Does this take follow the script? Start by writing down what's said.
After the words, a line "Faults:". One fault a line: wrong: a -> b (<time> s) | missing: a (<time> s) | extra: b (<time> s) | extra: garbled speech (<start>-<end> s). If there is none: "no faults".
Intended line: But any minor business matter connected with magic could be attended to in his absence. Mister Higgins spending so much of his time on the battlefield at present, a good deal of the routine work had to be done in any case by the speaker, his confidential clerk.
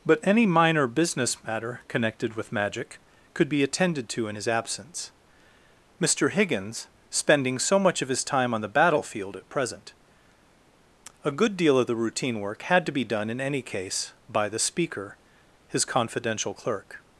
But any minor business matter connected with magic could be attended to in his absence. Mister Higgins spending so much of his time on the battlefield at present, a good deal of the routine work had to be done in any case by the speaker, his confidential clerk.
Faults:
no faults